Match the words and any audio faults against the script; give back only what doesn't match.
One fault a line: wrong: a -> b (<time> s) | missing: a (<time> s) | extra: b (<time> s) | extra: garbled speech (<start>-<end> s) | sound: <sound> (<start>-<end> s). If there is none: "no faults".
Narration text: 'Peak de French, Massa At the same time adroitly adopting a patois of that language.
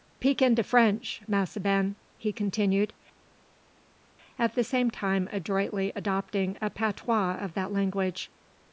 extra: in (0.4 s)
extra: Ben he continued (1.6 s)